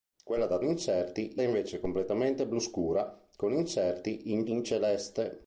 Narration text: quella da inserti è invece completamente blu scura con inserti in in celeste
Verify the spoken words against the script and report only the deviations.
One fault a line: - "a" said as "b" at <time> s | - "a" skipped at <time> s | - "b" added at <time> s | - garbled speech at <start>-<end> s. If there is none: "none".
none